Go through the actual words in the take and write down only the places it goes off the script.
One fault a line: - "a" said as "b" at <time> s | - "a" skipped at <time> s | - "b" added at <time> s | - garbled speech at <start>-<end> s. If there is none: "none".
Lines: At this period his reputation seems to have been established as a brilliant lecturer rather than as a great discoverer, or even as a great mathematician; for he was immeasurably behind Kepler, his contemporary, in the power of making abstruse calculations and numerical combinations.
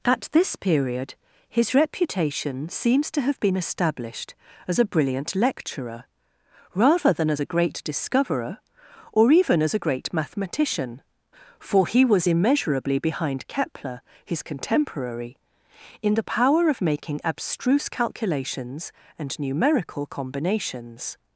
none